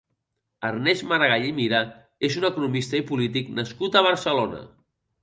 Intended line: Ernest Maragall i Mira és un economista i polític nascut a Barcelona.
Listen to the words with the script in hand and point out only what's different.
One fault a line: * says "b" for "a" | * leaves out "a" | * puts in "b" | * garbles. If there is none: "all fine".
all fine